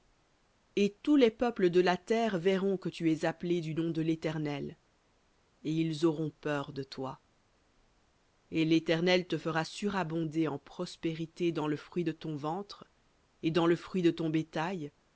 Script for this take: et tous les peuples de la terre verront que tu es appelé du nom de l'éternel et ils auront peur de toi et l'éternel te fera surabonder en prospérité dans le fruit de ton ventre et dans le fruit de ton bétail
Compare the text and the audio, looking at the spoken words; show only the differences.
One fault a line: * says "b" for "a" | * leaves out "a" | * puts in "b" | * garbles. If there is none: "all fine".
all fine